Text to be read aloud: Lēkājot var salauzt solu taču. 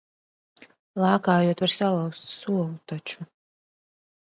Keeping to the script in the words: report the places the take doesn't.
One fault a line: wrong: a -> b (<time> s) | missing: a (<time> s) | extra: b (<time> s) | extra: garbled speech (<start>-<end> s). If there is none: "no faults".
no faults